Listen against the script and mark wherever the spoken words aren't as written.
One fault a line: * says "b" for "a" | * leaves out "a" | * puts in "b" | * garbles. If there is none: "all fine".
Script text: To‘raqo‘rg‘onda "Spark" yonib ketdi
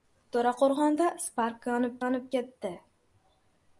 * puts in "yonib"